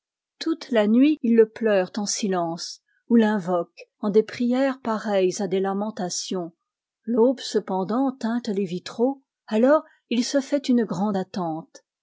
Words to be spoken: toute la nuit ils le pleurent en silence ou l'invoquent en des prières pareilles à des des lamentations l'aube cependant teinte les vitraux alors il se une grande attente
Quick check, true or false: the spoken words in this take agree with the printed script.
false